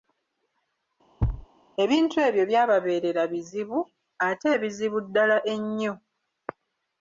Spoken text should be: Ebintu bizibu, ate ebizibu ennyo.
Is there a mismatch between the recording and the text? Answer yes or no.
yes